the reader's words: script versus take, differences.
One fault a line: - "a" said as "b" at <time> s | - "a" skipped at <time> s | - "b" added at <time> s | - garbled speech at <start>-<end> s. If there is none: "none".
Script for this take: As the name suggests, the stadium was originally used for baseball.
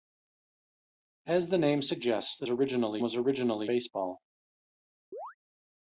- "stadium" said as "originally" at 2.5 s
- "used for" skipped at 3.7 s